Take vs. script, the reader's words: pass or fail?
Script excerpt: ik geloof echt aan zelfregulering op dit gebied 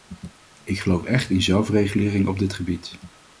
fail